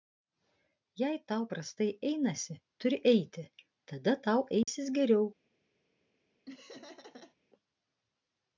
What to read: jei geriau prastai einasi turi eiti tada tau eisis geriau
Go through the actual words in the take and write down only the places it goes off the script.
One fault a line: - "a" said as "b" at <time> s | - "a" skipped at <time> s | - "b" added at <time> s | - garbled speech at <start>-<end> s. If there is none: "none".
- "geriau" said as "tau" at 1.3 s